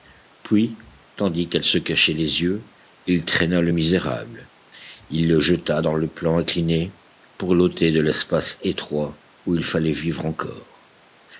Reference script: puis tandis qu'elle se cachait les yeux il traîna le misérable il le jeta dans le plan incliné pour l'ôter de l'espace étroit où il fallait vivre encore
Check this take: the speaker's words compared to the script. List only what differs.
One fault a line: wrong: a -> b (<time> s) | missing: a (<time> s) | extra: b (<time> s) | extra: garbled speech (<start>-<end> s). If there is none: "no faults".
no faults